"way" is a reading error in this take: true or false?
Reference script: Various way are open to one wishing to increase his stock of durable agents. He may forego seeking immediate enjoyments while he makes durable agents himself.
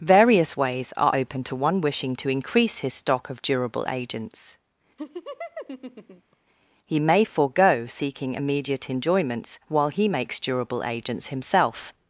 true